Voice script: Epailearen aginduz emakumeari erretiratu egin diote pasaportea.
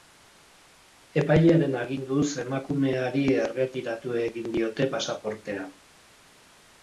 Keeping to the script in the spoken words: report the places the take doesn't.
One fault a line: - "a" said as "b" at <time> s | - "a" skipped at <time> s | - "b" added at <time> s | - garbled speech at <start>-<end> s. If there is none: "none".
none